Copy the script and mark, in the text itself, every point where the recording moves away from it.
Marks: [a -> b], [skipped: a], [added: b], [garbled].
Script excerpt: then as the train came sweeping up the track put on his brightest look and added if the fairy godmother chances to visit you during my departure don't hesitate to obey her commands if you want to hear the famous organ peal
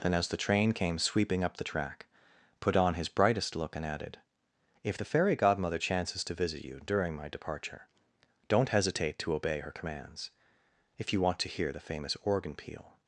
then as the train came sweeping up the track put on his brightest look and added if the fairy godmother chances to visit you during my departure don't hesitate to obey her commands if you want to hear the famous organ peal